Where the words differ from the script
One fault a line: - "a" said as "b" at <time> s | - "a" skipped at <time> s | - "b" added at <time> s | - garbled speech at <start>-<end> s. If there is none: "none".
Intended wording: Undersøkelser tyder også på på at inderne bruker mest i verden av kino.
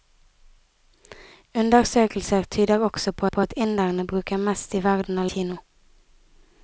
none